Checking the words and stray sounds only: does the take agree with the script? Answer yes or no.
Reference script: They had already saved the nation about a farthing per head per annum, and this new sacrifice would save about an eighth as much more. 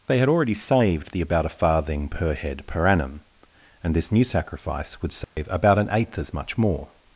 no